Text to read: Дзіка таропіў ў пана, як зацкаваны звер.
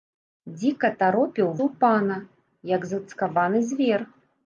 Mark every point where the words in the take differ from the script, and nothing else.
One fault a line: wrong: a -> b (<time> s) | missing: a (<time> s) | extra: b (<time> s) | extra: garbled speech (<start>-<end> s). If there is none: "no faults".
no faults